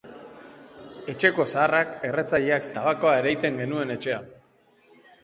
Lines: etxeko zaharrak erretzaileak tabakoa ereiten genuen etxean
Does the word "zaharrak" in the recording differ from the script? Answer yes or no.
no